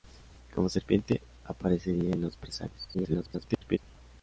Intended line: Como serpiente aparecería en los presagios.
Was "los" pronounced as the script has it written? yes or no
yes